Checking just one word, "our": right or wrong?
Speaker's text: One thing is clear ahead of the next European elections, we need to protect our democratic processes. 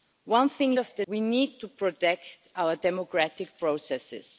right